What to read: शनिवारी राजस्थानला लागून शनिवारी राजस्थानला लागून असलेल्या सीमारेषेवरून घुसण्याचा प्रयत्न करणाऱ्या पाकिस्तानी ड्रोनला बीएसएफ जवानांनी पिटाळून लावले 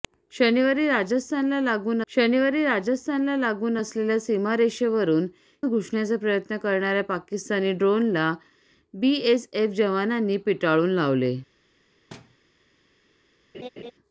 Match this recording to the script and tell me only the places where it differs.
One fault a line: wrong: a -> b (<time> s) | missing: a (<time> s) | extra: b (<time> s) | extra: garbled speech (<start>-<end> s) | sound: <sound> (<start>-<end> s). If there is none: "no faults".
sound: thud (12.1-12.4 s)
sound: laugh (13.5-13.9 s)